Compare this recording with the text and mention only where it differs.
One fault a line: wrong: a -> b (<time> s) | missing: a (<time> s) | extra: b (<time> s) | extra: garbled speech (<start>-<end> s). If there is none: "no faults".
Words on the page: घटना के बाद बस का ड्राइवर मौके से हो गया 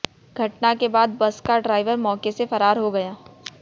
extra: फरार (2.5 s)